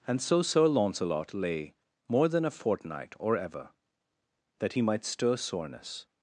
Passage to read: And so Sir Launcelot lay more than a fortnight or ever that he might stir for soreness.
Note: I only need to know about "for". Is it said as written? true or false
false